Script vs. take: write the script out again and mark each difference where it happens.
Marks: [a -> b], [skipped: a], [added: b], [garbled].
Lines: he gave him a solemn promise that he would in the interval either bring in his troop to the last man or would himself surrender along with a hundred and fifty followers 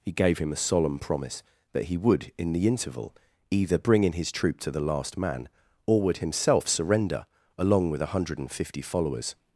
he gave him a solemn promise that he would in the interval either bring in his troop to the last man or would himself surrender along with a hundred and fifty followers